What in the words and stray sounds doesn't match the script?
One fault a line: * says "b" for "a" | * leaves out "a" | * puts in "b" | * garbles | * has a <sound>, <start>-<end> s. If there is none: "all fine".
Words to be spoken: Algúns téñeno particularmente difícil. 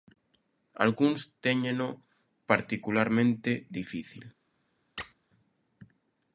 * has a squeak, 5.0-5.1 s